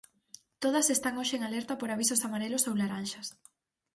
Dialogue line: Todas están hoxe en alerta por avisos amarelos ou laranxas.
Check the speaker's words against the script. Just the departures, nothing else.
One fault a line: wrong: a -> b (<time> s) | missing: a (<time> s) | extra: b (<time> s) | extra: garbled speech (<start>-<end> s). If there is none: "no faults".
no faults